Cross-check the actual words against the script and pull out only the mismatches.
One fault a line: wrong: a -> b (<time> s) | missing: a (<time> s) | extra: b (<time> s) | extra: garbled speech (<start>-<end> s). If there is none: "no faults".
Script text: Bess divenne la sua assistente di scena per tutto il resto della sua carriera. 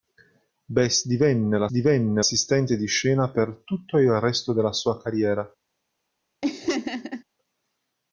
wrong: sua -> divenne (1.7 s)